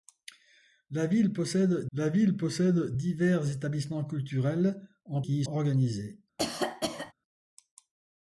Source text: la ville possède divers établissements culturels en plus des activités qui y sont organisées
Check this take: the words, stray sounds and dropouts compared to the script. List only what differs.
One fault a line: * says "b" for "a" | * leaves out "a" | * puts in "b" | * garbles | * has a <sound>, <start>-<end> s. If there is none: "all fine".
* puts in "la ville possède"
* leaves out "plus des activités"
* leaves out "sont"
* has a cough, 6.4-7.1 s